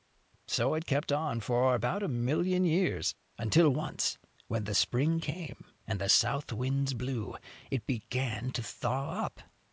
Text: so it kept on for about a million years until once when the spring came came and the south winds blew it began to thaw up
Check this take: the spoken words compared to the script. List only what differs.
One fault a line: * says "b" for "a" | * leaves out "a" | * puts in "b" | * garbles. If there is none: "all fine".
* leaves out "came"